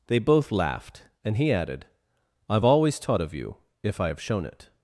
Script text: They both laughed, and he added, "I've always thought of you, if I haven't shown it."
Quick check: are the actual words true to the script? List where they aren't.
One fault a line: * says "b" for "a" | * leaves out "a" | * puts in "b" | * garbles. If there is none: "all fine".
* says "taught" for "thought"
* says "have" for "haven't"